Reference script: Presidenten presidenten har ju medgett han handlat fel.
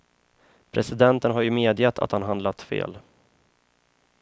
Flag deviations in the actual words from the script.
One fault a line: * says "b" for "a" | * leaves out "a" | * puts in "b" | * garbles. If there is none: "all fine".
* leaves out "presidenten"
* puts in "att"